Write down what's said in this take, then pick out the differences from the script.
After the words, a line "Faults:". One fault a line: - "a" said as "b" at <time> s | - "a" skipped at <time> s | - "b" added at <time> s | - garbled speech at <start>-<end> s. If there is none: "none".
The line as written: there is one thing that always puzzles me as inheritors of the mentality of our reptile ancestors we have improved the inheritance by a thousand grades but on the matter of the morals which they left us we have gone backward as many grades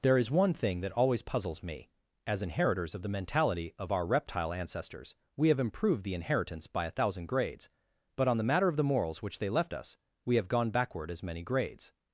there is one thing that always puzzles me as inheritors of the mentality of our reptile ancestors we have improved the inheritance by a thousand grades but on the matter of the morals which they left us we have gone backward as many grades
Faults:
none